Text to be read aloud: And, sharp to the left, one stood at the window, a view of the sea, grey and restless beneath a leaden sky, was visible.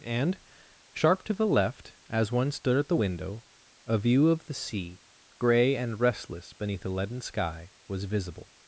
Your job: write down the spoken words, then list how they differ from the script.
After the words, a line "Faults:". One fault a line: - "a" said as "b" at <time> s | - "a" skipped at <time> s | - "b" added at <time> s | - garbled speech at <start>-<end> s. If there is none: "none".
And, sharp to the left, as one stood at the window, a view of the sea, grey and restless beneath a leaden sky, was visible.
Faults:
- "as" added at 2.1 s